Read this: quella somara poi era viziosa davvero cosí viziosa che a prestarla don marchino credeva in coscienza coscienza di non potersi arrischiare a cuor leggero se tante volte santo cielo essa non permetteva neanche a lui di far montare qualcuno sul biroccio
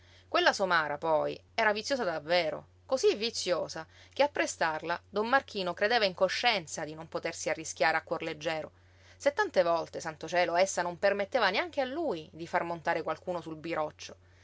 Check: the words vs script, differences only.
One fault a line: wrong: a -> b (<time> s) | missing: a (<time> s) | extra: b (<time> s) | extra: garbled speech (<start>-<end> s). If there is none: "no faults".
missing: coscienza (6.9 s)